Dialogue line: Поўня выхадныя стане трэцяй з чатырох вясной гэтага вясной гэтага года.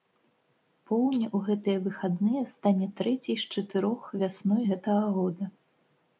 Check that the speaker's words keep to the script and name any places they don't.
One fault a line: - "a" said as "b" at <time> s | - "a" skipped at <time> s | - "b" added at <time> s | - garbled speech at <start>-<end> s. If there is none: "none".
- "ў гэтыя" added at 1.4 s
- "вясной гэтага" skipped at 5.0 s